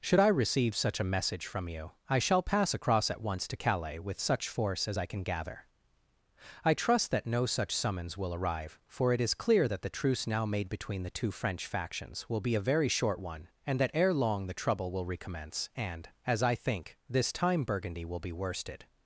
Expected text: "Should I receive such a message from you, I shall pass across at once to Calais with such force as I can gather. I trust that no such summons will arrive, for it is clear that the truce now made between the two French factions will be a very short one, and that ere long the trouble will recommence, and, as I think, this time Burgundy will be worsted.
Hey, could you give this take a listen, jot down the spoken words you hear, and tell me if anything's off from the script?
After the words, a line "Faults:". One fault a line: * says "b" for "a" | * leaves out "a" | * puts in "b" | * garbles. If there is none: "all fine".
"Should I receive such a message from you, I shall pass across at once to Calais with such force as I can gather. I trust that no such summons will arrive, for it is clear that the truce now made between the two French factions will be a very short one, and that ere long the trouble will recommence, and, as I think, this time Burgundy will be worsted.
Faults:
all fine